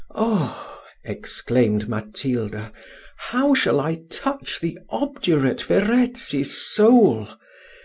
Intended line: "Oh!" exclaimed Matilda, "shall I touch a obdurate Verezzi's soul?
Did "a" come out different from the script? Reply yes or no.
yes